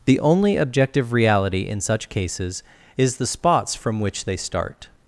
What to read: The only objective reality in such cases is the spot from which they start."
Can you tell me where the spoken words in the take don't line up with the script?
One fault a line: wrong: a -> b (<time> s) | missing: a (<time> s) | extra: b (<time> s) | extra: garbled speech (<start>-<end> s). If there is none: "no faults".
wrong: spot -> spots (3.3 s)